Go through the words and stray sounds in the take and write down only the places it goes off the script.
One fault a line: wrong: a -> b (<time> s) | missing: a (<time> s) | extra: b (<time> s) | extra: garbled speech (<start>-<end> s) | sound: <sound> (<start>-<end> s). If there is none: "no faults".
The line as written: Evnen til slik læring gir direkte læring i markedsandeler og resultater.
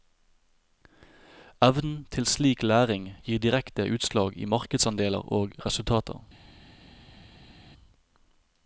wrong: læring -> utslag (3.9 s)